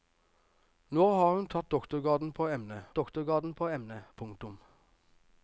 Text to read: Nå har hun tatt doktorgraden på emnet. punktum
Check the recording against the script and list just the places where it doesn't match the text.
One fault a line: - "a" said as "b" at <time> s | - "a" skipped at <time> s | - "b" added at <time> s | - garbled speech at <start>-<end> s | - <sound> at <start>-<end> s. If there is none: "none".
- "doktorgraden på emnet" added at 2.9 s